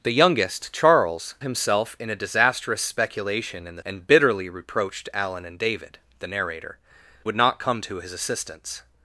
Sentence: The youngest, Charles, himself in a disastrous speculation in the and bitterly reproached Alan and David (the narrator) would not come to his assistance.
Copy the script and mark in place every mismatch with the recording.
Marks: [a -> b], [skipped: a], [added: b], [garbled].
The youngest, Charles, himself in a disastrous speculation in the and bitterly reproached Alan and David (the narrator) would not come to his assistance.